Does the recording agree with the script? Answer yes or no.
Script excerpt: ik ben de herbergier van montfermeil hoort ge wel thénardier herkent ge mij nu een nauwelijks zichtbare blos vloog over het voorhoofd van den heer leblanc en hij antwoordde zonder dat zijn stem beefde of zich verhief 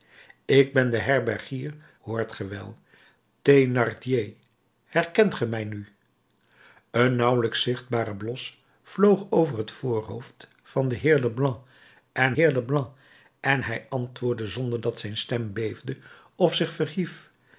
no